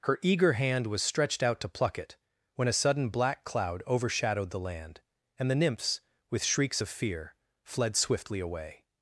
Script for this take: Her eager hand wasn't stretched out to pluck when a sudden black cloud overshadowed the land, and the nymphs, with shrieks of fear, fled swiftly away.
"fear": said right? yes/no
yes